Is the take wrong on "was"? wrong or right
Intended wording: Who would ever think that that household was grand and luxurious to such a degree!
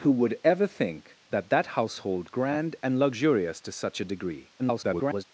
wrong